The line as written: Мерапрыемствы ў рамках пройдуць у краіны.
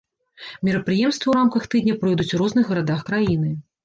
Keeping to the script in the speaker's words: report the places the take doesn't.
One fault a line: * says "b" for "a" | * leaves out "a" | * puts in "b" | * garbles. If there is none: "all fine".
* puts in "тыдня"
* puts in "розных гарадах"